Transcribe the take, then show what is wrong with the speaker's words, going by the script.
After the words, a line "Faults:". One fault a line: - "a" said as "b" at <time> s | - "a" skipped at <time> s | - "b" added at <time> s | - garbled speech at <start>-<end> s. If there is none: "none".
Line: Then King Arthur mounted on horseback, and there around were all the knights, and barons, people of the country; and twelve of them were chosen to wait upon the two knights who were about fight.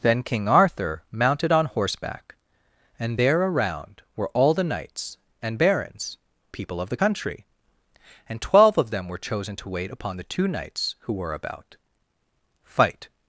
Then King Arthur mounted on horseback, and there around were all the knights, and barons, people of the country; and twelve of them were chosen to wait upon the two knights who were about fight.
Faults:
none